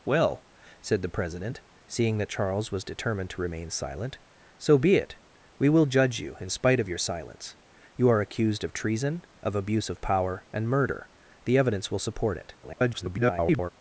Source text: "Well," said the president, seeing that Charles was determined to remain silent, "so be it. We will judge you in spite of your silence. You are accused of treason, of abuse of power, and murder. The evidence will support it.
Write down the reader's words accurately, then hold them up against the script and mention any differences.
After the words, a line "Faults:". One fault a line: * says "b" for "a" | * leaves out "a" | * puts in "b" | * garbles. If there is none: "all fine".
"Well," said the president, seeing that Charles was determined to remain silent, "so be it. We will judge you in spite of your silence. You are accused of treason, of abuse of power, and murder. The evidence will support it. [garbled]
Faults:
* garbles